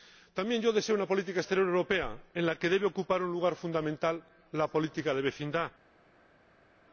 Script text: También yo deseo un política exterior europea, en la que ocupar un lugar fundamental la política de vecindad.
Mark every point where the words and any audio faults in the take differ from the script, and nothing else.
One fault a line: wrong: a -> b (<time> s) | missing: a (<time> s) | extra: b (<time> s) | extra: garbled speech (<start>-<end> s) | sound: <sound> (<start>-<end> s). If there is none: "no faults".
wrong: un -> una (0.9 s)
extra: debe (2.7 s)